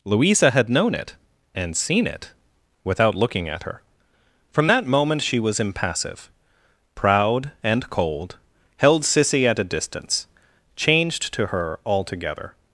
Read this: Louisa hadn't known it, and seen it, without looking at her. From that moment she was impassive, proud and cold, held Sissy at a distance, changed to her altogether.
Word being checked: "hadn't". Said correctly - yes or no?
no